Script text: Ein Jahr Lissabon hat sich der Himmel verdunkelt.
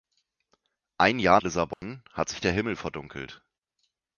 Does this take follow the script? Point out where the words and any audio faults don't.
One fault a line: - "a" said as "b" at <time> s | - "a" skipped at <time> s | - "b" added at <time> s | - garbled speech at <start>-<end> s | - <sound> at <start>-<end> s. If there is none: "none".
- dropout at 1.7-1.8 s